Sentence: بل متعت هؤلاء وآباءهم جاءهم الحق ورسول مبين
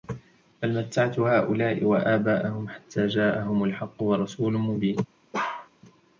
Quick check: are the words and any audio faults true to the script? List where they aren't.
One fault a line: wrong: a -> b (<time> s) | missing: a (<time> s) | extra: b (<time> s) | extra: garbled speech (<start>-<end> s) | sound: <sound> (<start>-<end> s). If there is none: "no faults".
extra: حتى (2.7 s)
sound: bark (5.3-5.7 s)